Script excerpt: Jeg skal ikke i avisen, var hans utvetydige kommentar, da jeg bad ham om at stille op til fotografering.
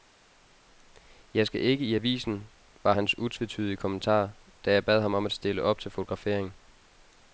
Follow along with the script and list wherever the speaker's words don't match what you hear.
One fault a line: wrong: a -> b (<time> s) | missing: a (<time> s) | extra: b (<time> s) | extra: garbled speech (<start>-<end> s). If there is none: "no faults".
no faults